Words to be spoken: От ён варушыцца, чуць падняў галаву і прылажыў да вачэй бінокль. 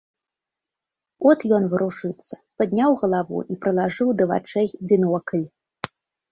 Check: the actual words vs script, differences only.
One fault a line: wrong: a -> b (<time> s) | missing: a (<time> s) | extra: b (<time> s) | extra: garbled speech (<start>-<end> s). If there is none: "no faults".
missing: чуць (2.4 s)